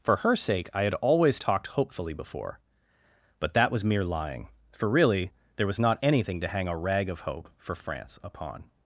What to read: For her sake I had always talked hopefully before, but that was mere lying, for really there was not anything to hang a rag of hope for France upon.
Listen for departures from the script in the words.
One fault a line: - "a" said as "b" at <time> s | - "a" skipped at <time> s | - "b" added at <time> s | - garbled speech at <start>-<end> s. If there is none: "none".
none